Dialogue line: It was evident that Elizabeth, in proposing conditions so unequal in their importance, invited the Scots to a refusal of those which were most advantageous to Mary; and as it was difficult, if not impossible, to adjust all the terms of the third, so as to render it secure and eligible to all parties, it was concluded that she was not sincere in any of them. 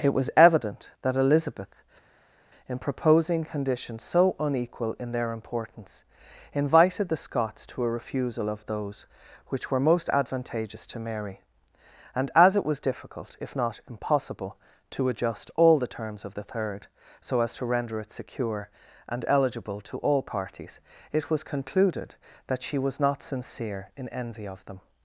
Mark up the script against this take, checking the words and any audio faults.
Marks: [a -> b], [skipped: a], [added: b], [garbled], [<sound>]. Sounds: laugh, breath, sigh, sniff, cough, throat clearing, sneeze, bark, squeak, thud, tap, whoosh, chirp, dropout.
It was evident that Elizabeth, in proposing conditions so unequal in their importance, invited the Scots to a refusal of those which were most advantageous to Mary; and as it was difficult, if not impossible, to adjust all the terms of the third, so as to render it secure and eligible to all parties, it was concluded that she was not sincere in [any -> envy] of them.